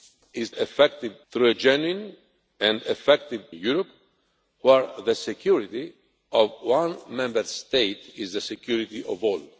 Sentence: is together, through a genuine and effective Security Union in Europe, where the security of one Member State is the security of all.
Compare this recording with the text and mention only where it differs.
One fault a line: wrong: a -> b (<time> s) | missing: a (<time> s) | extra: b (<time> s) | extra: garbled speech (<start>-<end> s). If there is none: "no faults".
wrong: together -> effective (0.5 s)
missing: Security Union in (3.4 s)